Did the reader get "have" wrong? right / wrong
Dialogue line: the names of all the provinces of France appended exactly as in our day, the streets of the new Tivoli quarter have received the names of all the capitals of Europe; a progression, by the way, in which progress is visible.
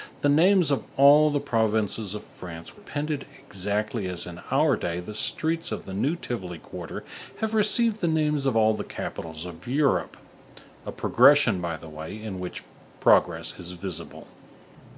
right